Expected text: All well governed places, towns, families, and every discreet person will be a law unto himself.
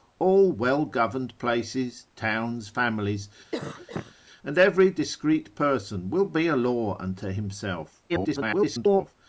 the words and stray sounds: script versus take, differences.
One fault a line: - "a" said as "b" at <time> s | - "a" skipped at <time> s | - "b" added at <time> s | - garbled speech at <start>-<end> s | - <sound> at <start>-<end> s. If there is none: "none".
- cough at 3.5-4.1 s
- garbled speech at 8.1-9.1 s